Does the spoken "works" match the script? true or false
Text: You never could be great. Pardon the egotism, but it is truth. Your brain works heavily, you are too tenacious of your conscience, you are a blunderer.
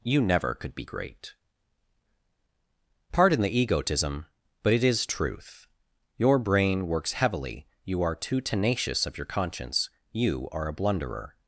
true